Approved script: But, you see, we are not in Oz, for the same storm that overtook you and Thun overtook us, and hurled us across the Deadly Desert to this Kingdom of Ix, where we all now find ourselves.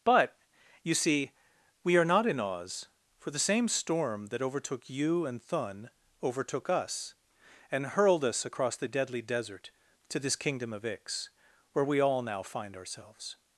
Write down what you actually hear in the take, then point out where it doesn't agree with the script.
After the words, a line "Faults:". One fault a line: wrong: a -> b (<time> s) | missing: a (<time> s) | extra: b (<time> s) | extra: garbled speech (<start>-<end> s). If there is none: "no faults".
But, you see, we are not in Oz, for the same storm that overtook you and Thun overtook us, and hurled us across the Deadly Desert to this Kingdom of Ix, where we all now find ourselves.
Faults:
no faults